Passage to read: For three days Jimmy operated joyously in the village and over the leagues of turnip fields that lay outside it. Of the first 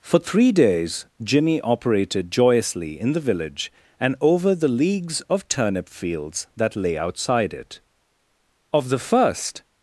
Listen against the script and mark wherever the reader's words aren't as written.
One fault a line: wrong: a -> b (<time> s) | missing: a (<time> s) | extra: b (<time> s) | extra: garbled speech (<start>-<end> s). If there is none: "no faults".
no faults